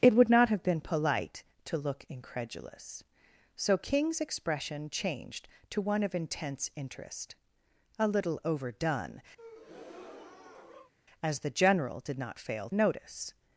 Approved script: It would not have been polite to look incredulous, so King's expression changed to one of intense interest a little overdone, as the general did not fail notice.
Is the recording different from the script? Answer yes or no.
no